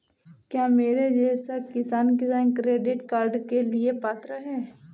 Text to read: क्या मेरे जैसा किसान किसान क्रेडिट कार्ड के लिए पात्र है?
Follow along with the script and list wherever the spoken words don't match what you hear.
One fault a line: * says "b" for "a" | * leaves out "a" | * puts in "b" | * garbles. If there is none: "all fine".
all fine